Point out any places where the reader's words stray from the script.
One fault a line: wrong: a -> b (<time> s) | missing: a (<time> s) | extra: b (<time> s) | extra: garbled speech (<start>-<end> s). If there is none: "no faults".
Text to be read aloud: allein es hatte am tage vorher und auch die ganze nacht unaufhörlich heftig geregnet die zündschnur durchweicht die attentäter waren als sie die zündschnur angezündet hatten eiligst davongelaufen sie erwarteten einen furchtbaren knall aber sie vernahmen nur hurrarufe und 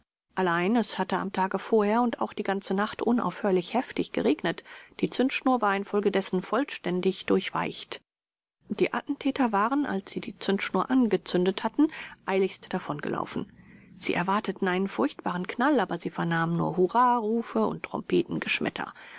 extra: war infolgedessen vollständig (5.6 s)